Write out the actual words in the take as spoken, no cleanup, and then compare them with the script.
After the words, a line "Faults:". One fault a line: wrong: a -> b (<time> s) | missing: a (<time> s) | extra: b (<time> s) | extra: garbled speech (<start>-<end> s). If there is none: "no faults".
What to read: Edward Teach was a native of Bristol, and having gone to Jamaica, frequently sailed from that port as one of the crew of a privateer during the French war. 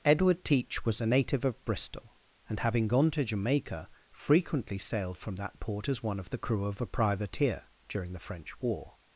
Edward Teach was a native of Bristol, and having gone to Jamaica, frequently sailed from that port as one of the crew of a privateer during the French war.
Faults:
no faults